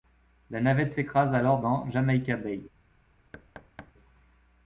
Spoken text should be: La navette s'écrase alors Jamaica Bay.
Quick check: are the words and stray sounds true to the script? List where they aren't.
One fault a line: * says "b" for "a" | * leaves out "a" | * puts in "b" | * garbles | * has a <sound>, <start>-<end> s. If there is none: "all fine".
* puts in "dans"
* has a thud, 3.3-3.9 s